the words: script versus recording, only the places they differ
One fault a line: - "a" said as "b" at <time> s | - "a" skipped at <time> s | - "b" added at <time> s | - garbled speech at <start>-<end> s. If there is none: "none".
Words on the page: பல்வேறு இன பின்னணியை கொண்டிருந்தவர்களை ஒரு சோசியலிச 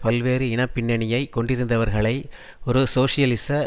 none